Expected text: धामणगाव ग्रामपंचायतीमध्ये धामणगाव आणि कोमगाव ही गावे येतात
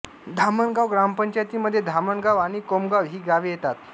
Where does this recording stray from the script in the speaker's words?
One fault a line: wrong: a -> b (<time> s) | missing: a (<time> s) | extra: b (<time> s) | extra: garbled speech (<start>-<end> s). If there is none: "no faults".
no faults